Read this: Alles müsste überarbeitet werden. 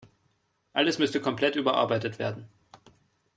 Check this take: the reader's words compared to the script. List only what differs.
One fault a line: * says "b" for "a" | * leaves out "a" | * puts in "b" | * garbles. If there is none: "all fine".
* puts in "komplett"